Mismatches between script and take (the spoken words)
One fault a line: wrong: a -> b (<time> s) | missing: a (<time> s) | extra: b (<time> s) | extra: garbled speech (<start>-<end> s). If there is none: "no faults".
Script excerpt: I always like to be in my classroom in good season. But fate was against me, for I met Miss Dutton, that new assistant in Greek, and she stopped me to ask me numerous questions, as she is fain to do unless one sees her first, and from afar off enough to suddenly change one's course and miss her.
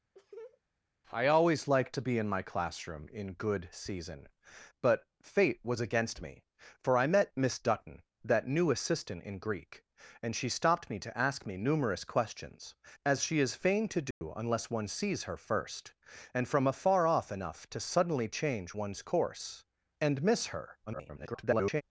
extra: garbled speech (20.9-21.8 s)